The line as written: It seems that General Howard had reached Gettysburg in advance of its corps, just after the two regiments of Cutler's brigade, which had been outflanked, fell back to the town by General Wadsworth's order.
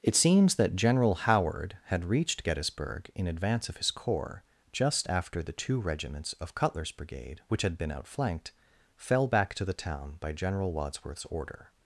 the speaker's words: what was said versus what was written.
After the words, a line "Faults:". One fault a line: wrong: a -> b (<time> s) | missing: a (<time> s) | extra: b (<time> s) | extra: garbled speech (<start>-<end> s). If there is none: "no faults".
It seems that General Howard had reached Gettysburg in advance of his corps, just after the two regiments of Cutler's brigade, which had been outflanked, fell back to the town by General Wadsworth's order.
Faults:
wrong: its -> his (3.8 s)